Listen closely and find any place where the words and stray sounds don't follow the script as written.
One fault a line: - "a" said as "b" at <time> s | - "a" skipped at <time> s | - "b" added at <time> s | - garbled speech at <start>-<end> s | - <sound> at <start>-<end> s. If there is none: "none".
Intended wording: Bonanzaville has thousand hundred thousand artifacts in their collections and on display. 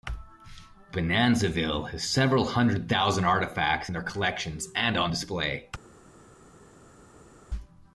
- "thousand" said as "several" at 2.0 s